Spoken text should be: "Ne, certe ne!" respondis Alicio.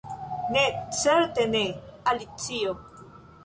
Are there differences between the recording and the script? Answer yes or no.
yes